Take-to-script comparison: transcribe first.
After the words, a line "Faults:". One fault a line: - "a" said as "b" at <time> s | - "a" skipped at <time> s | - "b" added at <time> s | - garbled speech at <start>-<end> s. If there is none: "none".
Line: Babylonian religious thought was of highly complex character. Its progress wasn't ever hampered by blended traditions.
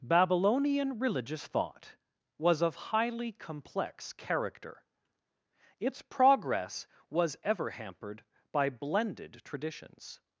Babylonian religious thought was of highly complex character. Its progress was ever hampered by blended traditions.
Faults:
- "wasn't" said as "was" at 7.1 s